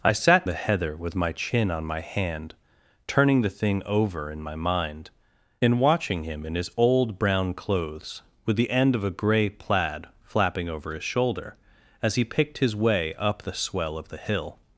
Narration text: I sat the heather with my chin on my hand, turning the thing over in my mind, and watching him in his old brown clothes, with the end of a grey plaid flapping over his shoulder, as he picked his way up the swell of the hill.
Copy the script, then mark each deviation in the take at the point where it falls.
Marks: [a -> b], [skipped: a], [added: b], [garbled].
I sat the heather with my chin on my hand, turning the thing over in my mind, and watching him in his old brown clothes, with the end of a grey plaid flapping over his shoulder, as he picked his way up the swell of the hill.